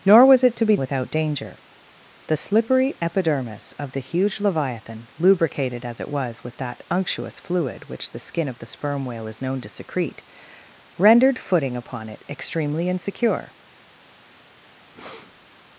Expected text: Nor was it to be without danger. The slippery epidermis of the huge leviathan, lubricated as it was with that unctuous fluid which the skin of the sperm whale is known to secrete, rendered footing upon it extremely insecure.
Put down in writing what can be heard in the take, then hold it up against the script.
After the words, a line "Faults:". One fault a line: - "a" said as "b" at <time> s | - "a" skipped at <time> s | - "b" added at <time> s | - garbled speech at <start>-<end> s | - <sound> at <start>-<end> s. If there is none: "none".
Nor was it to be without danger. The slippery epidermis of the huge leviathan, lubricated as it was with that unctuous fluid which the skin of the sperm whale is known to secrete, rendered footing upon it extremely insecure.
Faults:
- breath at 14.9-15.5 s